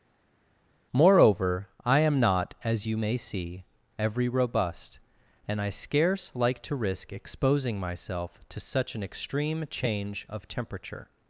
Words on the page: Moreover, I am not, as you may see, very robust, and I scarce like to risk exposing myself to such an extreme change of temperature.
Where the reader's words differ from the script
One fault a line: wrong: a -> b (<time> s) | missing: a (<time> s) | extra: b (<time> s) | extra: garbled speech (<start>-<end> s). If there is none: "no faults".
wrong: very -> every (4.0 s)